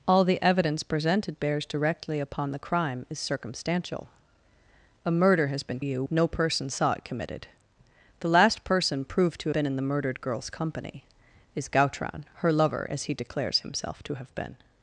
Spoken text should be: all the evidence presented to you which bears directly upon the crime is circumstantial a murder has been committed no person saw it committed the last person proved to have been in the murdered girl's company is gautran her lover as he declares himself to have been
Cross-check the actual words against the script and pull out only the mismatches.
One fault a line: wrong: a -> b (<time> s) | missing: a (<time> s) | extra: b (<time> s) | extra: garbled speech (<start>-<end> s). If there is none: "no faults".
missing: to you which (1.4 s)
wrong: committed -> you (5.8 s)
missing: have (9.5 s)